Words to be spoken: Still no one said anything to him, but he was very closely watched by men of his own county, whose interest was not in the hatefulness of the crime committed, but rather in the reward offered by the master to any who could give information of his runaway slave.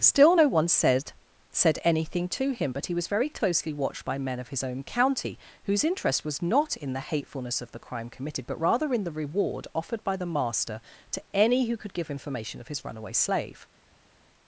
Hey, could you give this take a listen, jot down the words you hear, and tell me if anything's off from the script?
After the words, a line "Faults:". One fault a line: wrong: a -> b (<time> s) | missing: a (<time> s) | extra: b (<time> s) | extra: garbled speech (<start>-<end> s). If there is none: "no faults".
Still no one said said anything to him, but he was very closely watched by men of his own county, whose interest was not in the hatefulness of the crime committed, but rather in the reward offered by the master to any who could give information of his runaway slave.
Faults:
extra: said (1.5 s)